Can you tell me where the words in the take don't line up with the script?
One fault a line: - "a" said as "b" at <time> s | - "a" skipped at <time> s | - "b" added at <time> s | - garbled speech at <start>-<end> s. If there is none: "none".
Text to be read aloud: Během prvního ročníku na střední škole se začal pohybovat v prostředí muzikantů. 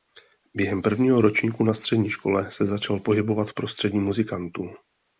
none